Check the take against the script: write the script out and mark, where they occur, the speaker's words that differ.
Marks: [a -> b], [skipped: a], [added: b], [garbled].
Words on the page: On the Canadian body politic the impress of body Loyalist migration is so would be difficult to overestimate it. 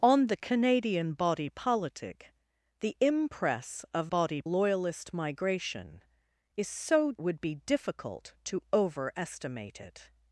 On the Canadian body politic the impress of body Loyalist migration is so would be difficult to overestimate it.